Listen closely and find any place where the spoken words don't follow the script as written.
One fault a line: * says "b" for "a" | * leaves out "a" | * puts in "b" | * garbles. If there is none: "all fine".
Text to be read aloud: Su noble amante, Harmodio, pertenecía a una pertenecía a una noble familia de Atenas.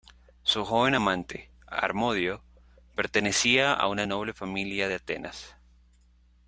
* says "joven" for "noble"
* leaves out "pertenecía a una"